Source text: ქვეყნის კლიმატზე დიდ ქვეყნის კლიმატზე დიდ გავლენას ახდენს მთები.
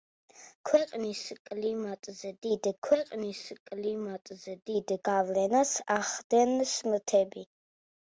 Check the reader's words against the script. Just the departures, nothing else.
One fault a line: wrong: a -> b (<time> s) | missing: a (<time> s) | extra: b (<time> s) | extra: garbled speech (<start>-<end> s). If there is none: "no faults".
no faults